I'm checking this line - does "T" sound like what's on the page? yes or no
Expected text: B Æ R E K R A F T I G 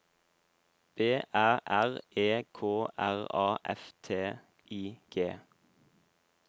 yes